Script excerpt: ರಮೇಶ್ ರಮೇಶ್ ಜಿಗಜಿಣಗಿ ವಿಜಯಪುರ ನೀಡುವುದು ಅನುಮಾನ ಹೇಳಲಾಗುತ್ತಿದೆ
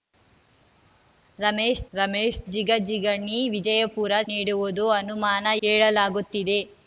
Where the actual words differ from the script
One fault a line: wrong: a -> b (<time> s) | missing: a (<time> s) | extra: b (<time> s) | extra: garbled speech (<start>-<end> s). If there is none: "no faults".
no faults